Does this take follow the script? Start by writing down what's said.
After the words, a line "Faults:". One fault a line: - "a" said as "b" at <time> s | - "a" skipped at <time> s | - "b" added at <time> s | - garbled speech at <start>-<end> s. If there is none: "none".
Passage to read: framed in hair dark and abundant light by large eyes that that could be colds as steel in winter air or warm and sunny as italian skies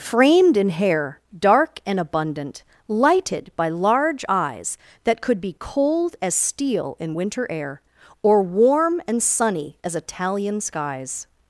framed in hair dark and abundant lighted by large eyes that could be cold as steel in winter air or warm and sunny as italian skies
Faults:
- "light" said as "lighted" at 2.9 s
- "that" skipped at 5.2 s
- "colds" said as "cold" at 5.6 s